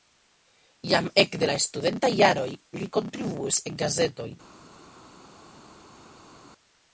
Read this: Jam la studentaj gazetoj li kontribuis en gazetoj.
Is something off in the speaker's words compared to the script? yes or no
yes